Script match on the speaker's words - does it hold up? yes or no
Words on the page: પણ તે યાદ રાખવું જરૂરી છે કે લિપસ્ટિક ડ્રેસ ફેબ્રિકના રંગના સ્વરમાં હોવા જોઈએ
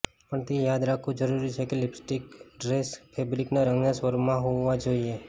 yes